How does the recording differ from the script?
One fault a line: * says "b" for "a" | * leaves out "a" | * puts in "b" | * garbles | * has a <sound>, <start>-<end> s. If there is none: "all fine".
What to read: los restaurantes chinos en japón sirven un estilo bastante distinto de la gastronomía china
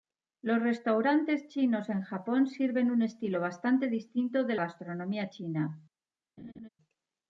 * leaves out "la"
* has a laugh, 6.4-6.7 s